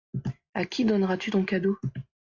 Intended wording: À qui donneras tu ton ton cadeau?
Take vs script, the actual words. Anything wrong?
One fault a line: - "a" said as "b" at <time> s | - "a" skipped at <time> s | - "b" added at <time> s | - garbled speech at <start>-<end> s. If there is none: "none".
- "ton" skipped at 1.4 s